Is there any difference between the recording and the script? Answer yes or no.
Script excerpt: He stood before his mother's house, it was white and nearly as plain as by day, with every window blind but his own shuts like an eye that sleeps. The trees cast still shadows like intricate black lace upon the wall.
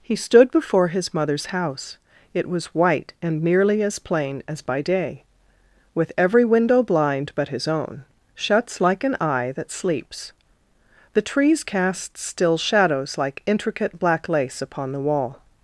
no